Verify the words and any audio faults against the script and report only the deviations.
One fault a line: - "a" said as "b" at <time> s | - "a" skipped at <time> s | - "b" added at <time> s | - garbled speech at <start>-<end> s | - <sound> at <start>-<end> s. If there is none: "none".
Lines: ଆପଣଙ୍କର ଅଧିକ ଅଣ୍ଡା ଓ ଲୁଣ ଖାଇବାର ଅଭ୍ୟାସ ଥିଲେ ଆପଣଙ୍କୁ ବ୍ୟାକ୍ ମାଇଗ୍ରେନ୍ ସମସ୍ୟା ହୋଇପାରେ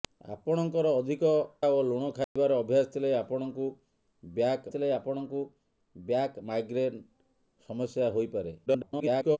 - "ଅଣ୍ଡା" skipped at 1.3 s
- dropout at 2.2-2.4 s
- "ଥିଲେ ଆପଣଙ୍କୁ ବ୍ୟାକ୍" added at 4.7 s
- garbled speech at 8.7-9.4 s